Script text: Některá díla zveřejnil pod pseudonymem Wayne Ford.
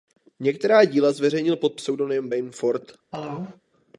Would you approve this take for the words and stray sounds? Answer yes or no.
no